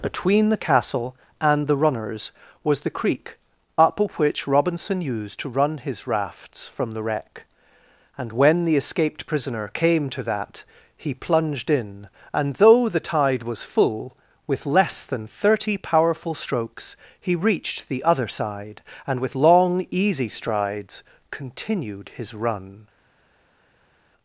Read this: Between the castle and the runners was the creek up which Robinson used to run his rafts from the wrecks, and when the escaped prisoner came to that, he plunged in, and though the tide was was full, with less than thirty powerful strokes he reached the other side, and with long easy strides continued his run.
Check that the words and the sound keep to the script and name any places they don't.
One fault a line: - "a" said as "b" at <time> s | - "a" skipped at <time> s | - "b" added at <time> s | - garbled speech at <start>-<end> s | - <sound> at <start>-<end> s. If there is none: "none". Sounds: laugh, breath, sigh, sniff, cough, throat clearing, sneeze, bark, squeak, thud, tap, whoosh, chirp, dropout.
- "wrecks" said as "wreck" at 7.0 s
- "was" skipped at 13.6 s